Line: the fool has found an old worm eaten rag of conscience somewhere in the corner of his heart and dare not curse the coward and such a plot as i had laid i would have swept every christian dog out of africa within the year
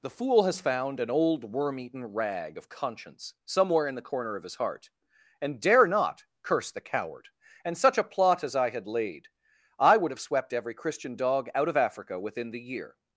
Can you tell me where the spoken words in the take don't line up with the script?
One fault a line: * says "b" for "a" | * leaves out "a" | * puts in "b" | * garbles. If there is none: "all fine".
all fine